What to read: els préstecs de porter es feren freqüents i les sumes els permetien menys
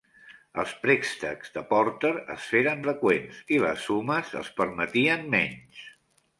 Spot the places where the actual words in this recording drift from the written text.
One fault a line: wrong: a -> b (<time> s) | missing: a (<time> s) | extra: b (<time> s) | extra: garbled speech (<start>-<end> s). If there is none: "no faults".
no faults